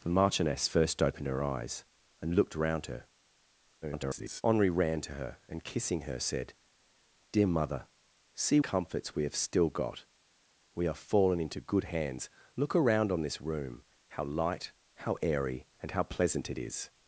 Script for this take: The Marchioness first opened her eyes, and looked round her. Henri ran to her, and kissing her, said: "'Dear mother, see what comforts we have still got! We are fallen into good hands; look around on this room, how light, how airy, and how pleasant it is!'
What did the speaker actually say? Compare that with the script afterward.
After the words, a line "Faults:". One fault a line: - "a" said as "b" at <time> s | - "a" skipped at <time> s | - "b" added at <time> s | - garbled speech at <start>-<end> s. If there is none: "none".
The Marchioness first opened her eyes, and looked round her. [garbled] Henri ran to her, and kissing her, said: "'Dear mother, see comforts we have still got! We are fallen into good hands; look around on this room, how light, how airy, and how pleasant it is!'
Faults:
- garbled speech at 3.8-4.4 s
- "what" skipped at 8.6 s